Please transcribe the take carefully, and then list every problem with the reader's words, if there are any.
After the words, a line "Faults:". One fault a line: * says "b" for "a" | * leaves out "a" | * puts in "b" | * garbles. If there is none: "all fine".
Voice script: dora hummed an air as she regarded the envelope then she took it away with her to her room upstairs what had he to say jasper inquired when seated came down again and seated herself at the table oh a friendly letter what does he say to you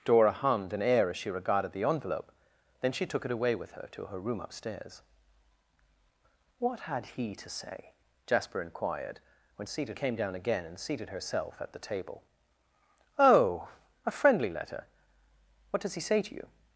dora hummed an air as she regarded the envelope then she took it away with her to her room upstairs what had he to say jasper inquired when seated came down again and seated herself at the table oh a friendly letter what does he say to you
Faults:
all fine